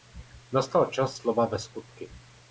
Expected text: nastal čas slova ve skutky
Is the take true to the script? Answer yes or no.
yes